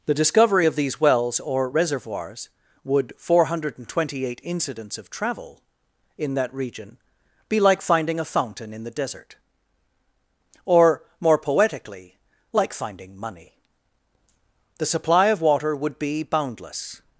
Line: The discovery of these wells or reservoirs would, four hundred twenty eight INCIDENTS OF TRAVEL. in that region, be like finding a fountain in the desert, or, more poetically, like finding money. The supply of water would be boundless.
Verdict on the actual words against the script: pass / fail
pass